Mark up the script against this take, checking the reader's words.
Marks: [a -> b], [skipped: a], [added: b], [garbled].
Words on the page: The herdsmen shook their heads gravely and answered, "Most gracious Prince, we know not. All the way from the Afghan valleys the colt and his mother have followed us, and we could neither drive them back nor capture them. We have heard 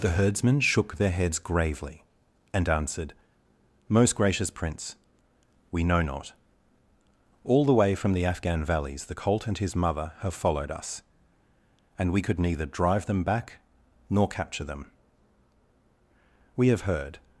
The herdsmen shook their heads gravely and answered, "Most gracious Prince, we know not. All the way from the Afghan valleys the colt and his mother have followed us, and we could neither drive them back nor capture them. We have heard